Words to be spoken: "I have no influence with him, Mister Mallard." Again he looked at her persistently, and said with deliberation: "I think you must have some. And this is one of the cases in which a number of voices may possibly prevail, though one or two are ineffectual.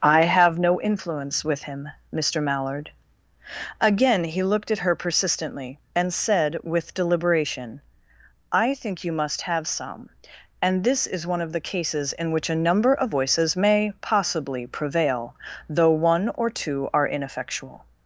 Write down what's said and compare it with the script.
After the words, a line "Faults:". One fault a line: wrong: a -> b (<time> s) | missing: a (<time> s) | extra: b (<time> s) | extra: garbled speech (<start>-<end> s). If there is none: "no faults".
"I have no influence with him, Mister Mallard." Again he looked at her persistently, and said with deliberation: "I think you must have some. And this is one of the cases in which a number of voices may possibly prevail, though one or two are ineffectual.
Faults:
no faults